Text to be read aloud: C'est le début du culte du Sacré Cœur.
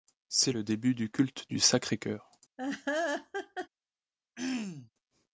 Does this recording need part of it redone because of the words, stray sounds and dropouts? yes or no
yes